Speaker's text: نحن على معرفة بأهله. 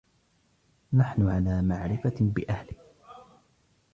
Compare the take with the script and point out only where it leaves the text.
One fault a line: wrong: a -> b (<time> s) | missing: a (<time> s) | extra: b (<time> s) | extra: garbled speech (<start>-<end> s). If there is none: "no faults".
no faults